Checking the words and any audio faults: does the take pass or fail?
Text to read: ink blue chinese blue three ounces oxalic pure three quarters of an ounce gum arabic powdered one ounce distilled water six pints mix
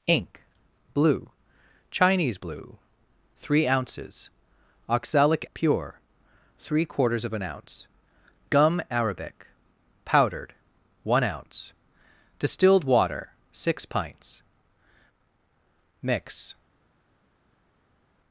pass